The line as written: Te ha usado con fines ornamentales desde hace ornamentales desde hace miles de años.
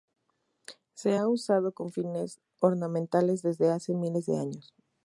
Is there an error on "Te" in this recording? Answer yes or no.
yes